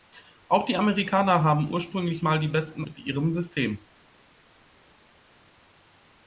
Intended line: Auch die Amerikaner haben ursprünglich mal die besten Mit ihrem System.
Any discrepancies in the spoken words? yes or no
no